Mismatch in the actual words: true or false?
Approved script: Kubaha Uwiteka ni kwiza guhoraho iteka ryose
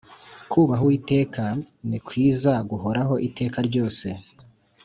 false